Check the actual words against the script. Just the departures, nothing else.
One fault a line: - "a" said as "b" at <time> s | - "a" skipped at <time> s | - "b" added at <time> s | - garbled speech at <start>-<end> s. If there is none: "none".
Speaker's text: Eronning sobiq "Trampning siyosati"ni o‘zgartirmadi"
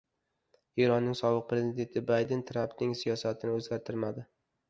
- "prezidenti Bayden" added at 1.5 s